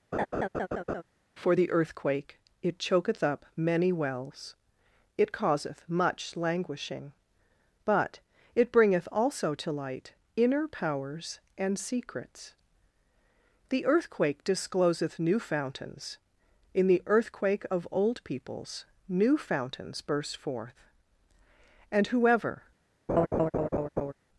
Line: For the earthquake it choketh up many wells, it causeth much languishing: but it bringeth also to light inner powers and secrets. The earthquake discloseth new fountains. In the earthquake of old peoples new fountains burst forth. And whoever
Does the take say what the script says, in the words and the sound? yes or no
no